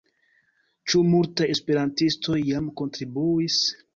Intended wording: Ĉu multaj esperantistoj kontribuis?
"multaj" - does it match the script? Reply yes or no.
yes